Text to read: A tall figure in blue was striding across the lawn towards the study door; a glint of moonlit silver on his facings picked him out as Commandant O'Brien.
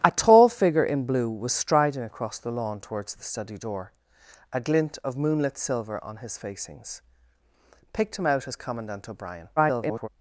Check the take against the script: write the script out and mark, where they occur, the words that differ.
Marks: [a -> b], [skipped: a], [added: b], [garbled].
A tall figure in blue was striding across the lawn towards the study door; a glint of moonlit silver on his facings picked him out as Commandant O'Brien. [garbled]